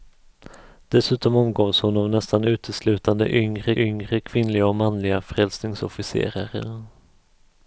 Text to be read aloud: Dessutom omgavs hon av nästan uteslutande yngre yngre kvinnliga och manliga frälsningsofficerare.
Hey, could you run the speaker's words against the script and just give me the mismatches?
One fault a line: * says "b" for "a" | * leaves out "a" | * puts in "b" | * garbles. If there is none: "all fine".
all fine